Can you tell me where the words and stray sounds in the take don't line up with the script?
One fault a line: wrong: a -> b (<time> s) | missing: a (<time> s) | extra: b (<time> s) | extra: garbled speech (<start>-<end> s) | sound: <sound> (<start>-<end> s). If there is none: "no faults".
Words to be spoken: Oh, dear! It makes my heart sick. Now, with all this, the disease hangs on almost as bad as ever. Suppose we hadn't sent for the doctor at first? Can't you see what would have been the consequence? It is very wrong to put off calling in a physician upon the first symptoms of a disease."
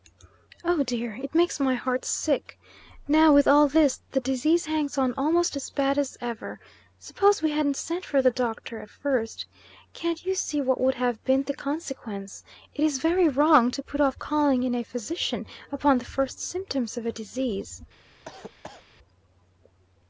sound: cough (18.3-18.9 s)